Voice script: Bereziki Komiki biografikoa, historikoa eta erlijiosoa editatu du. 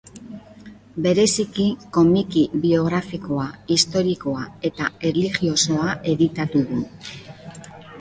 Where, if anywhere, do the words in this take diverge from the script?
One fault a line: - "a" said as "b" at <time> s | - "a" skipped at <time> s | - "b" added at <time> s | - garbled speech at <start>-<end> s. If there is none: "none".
none